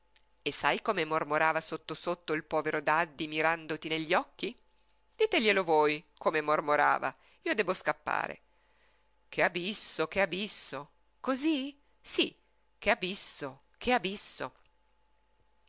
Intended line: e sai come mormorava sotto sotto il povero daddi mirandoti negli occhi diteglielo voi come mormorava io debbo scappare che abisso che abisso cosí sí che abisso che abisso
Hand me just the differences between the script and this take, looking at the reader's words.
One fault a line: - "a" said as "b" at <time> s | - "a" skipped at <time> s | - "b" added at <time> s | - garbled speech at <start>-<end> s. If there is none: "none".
none